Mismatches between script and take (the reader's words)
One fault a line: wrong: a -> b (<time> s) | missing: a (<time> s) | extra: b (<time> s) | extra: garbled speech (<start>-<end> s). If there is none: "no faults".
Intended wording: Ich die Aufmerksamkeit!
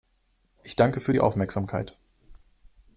extra: danke für (0.8 s)